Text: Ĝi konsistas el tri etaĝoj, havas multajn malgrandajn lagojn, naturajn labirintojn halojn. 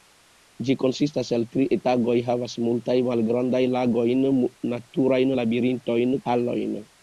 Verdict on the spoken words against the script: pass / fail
pass